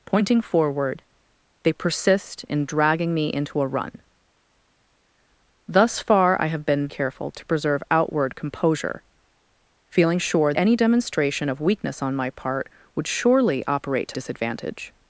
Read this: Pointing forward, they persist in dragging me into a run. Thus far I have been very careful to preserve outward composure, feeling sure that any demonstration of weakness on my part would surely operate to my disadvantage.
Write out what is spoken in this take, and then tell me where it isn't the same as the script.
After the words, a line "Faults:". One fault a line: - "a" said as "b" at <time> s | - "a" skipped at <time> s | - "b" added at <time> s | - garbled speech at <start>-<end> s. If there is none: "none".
Pointing forward, they persist in dragging me into a run. Thus far I have been careful to preserve outward composure, feeling sure any demonstration of weakness on my part would surely operate to disadvantage.
Faults:
- "very" skipped at 6.9 s
- "that" skipped at 10.5 s
- "my" skipped at 14.2 s